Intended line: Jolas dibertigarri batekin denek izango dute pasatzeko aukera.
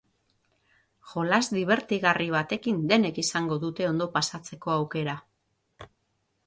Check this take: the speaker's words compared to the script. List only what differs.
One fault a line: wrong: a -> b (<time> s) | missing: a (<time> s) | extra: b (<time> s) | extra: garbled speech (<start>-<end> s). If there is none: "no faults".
extra: ondo (3.9 s)